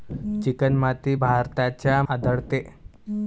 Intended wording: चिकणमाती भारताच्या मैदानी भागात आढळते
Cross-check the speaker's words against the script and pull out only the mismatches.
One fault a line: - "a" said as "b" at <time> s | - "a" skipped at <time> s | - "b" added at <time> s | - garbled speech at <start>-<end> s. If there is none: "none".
- "मैदानी भागात" skipped at 2.0 s